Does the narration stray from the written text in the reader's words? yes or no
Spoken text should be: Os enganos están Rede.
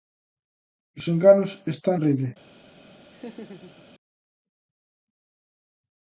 no